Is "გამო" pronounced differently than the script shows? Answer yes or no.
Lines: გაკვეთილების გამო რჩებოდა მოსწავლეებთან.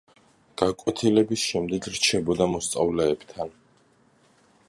yes